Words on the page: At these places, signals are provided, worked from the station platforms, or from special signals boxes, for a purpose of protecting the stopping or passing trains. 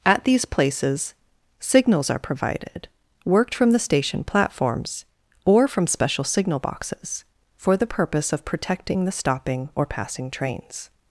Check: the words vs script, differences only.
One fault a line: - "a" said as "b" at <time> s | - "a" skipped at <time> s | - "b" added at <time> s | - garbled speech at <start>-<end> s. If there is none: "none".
- "signals" said as "signal" at 6.2 s
- "a" said as "the" at 7.8 s